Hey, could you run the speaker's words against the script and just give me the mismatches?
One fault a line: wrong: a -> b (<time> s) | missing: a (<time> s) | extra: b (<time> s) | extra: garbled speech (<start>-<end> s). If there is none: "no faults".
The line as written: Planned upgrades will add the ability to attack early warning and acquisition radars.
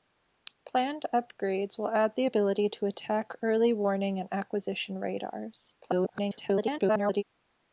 extra: garbled speech (5.8-7.2 s)